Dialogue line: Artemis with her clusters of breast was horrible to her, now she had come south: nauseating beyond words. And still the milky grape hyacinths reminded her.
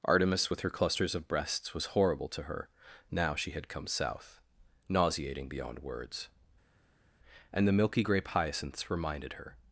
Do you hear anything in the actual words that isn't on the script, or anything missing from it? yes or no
yes